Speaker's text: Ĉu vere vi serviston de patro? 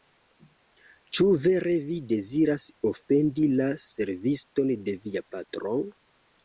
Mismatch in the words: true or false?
true